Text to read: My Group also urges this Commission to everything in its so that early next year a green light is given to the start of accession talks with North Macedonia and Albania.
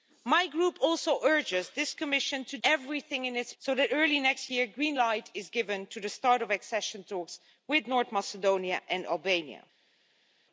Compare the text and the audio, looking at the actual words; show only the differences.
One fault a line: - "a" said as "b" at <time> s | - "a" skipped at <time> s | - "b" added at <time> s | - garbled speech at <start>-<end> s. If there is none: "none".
none